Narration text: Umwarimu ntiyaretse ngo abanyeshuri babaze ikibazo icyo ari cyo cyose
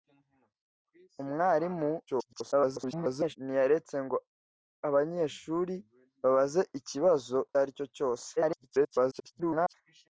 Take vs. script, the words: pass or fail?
fail